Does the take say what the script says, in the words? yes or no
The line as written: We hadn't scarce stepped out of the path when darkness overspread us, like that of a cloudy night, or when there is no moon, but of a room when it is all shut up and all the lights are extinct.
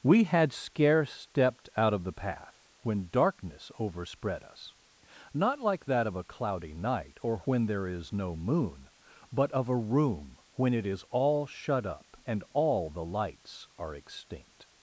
no